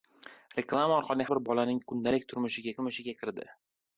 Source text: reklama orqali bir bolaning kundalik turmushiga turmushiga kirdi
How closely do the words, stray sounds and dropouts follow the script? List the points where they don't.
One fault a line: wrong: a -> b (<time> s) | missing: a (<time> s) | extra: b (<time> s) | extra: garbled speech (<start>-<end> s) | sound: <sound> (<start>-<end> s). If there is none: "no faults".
no faults